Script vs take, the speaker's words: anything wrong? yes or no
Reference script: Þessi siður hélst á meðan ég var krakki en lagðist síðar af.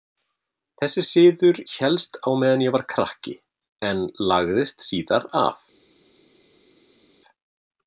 no